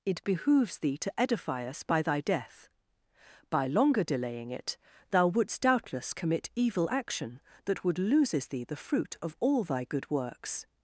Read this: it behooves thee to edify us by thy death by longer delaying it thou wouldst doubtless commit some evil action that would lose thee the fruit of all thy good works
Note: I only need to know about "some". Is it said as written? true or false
false